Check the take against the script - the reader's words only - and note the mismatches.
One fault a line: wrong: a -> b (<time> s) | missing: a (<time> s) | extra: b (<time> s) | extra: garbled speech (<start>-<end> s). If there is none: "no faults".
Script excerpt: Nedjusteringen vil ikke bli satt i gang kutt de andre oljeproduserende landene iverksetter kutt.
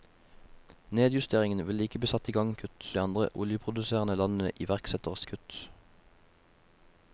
no faults